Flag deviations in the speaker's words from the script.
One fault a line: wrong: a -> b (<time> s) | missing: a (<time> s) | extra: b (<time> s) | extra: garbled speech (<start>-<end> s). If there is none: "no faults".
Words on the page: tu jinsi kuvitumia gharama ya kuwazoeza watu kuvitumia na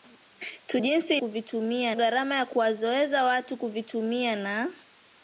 no faults